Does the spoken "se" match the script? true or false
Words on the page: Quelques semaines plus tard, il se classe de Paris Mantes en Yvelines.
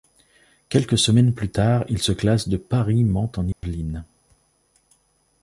true